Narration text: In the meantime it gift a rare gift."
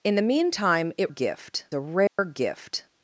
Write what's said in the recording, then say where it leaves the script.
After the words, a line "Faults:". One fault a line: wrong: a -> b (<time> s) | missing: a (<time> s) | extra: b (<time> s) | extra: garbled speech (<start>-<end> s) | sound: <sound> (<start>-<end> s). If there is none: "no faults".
In the meantime it gift a rare gift."
Faults:
sound: dropout (2.1-2.2 s)